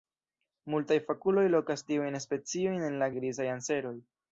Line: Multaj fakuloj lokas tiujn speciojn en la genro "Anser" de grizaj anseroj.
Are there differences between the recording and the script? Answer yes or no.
yes